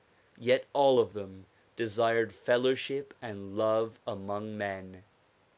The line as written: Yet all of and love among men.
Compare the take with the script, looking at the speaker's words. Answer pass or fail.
fail